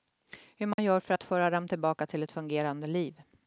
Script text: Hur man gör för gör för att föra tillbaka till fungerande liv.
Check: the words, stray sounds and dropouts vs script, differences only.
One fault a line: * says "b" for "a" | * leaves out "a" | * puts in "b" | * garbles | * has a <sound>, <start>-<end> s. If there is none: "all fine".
* has a dropout, 0.7-0.8 s
* leaves out "gör för"
* puts in "dem"
* puts in "ett"